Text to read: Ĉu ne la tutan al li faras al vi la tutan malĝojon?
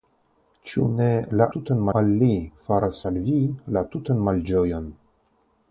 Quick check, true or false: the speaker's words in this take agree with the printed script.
true